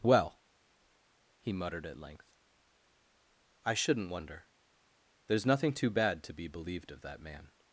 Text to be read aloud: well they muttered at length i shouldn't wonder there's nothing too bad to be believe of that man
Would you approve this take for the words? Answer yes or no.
no